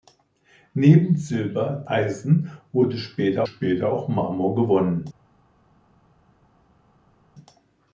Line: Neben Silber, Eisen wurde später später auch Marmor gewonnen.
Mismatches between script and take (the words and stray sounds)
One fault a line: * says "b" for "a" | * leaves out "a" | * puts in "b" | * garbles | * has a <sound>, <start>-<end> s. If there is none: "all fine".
all fine